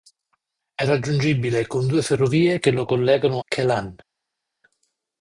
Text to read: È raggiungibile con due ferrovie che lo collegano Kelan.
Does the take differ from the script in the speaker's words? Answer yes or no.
no